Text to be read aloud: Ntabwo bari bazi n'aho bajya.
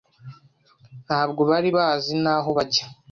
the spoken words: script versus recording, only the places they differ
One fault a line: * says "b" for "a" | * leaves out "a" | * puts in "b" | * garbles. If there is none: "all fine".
all fine